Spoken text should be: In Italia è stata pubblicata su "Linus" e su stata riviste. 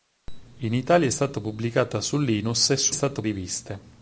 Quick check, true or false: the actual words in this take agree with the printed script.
true